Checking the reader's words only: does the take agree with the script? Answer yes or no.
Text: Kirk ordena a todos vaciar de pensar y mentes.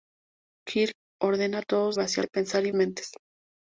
yes